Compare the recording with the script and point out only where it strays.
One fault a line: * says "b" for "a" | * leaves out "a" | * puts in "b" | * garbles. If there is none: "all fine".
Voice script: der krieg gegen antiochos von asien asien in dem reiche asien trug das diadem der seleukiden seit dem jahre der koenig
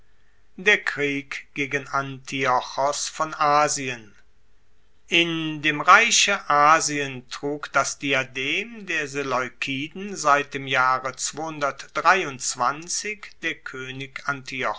* leaves out "asien"